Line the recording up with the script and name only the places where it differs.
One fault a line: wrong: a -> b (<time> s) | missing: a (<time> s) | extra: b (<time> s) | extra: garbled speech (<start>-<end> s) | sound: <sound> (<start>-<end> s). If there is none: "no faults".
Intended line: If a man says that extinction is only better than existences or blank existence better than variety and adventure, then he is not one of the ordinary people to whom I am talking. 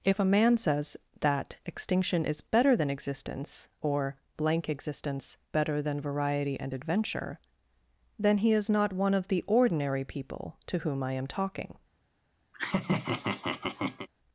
missing: only (2.4 s)
wrong: existences -> existence (2.9 s)
sound: laugh (12.5-14.1 s)